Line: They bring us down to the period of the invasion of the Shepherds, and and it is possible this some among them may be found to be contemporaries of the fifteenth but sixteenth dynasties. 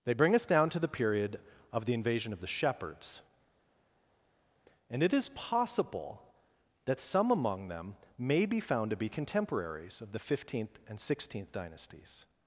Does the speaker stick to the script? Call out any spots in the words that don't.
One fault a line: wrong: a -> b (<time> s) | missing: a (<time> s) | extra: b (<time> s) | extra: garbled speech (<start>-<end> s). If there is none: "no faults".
missing: and (5.0 s)
wrong: this -> that (6.9 s)
wrong: but -> and (10.9 s)